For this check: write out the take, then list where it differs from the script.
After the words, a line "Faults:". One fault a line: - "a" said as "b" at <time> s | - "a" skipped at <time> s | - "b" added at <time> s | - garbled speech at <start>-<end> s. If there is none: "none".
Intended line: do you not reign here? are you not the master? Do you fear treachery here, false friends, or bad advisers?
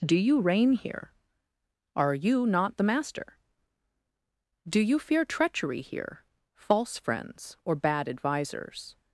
do you reign here? are you not the master? Do you fear treachery here, false friends, or bad advisers?
Faults:
- "not" skipped at 0.4 s